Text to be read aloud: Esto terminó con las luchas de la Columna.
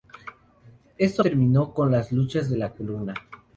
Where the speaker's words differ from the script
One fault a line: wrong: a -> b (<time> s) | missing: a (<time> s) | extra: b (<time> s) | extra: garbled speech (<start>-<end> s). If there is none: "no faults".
no faults